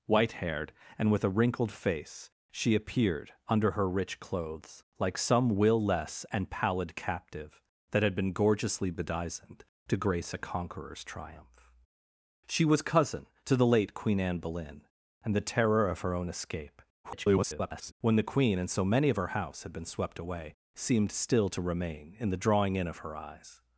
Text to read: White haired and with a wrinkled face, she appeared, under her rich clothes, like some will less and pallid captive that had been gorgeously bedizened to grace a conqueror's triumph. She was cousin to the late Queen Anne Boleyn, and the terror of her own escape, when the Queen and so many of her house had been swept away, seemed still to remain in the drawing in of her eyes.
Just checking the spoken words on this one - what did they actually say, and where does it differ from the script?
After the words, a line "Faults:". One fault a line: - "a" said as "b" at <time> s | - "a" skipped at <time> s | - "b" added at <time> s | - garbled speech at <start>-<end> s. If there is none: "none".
White haired and with a wrinkled face, she appeared, under her rich clothes, like some will less and pallid captive that had been gorgeously bedizened to grace a conqueror's triumph. She was cousin to the late Queen Anne Boleyn, and the terror of her own escape, [garbled] when the Queen and so many of her house had been swept away, seemed still to remain in the drawing in of her eyes.
Faults:
- garbled speech at 17.0-17.9 s